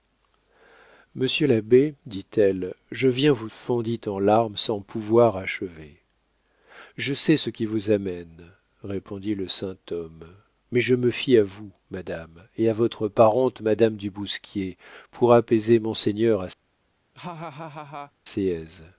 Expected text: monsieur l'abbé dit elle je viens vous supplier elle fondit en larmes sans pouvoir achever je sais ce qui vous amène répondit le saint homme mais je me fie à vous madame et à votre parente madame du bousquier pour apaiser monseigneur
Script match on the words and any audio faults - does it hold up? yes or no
no